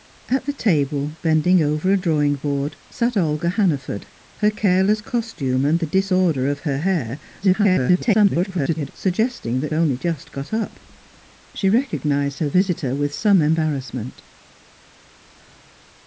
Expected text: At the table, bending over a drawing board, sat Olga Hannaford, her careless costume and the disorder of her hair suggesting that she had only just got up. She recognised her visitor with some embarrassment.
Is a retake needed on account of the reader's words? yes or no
yes